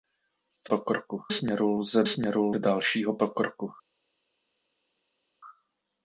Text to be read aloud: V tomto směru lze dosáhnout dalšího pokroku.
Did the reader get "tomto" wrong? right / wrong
wrong